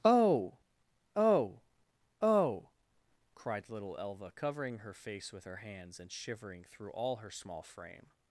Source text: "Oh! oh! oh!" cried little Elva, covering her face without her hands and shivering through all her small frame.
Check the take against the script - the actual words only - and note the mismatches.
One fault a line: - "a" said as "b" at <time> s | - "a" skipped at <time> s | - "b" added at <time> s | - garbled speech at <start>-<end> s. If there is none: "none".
- "without" said as "with" at 5.3 s